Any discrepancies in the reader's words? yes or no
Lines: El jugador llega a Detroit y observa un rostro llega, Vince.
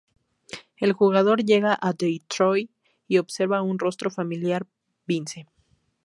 yes